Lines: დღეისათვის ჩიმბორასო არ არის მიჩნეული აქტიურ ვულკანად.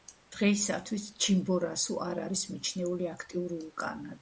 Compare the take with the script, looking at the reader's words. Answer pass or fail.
pass